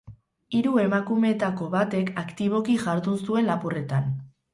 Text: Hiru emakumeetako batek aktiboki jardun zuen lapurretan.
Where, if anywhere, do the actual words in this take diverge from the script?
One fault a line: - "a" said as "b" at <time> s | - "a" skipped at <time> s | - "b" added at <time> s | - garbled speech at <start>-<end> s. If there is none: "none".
none